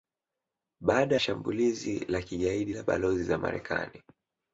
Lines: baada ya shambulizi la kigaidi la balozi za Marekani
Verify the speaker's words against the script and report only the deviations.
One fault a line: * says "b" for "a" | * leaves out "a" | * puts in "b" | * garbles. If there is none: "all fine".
* leaves out "ya"